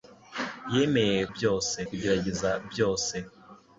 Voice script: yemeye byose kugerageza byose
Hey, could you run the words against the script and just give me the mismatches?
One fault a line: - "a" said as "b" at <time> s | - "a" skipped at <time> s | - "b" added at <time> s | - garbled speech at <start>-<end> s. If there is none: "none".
none